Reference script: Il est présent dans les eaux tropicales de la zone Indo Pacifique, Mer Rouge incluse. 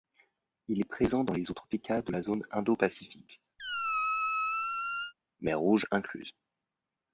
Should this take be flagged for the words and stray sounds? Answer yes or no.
yes